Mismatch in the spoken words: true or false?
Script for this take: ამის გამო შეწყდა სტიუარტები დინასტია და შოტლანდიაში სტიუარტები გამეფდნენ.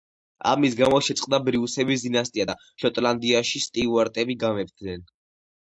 true